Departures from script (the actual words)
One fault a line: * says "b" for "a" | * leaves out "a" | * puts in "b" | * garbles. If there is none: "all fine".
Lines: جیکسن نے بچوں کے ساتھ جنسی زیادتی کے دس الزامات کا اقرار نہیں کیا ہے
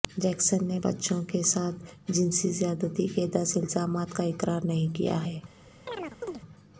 all fine